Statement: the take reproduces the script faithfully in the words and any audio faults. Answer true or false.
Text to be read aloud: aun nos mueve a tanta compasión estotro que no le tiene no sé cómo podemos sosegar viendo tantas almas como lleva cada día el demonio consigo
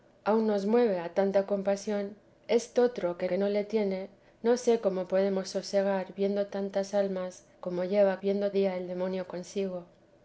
false